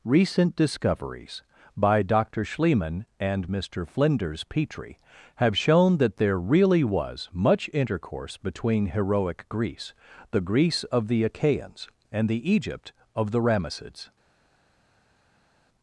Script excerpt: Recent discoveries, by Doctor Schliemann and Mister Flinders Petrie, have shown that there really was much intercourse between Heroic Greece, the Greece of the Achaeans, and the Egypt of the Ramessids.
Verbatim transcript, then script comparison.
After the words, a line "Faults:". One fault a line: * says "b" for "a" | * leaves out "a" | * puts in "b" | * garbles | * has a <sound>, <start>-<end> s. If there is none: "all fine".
Recent discoveries, by Doctor Schliemann and Mister Flinders Petrie, have shown that there really was much intercourse between Heroic Greece, the Greece of the Achaeans, and the Egypt of the Ramessids.
Faults:
all fine